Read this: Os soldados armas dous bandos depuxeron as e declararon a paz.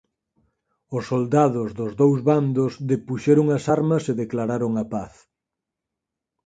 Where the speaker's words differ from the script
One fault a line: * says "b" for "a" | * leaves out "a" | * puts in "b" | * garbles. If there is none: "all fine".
* says "dos" for "armas"
* puts in "armas"